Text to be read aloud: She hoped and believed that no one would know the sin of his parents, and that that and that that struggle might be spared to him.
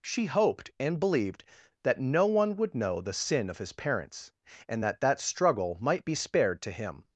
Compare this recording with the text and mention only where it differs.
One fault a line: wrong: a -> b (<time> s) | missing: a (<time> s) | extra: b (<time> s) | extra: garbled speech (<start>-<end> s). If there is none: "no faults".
missing: and that that (5.2 s)